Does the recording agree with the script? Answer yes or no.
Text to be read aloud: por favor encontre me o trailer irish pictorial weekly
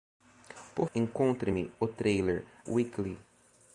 no